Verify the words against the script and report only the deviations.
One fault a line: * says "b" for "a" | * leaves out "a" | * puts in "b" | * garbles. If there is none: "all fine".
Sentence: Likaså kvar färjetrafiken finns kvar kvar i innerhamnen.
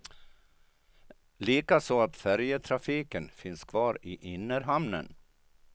* says "att" for "kvar"
* leaves out "kvar"